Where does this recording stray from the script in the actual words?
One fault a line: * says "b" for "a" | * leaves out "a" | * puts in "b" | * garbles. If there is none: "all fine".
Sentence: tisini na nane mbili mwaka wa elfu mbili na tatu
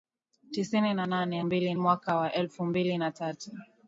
all fine